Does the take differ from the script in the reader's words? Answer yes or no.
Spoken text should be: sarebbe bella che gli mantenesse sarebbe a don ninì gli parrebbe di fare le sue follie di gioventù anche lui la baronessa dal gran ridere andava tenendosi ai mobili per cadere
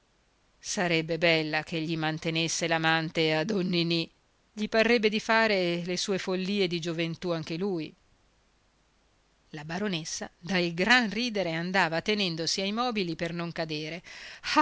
yes